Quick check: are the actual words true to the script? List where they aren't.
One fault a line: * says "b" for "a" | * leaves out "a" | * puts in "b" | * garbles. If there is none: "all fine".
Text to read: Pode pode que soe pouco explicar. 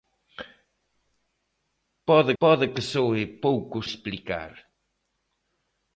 all fine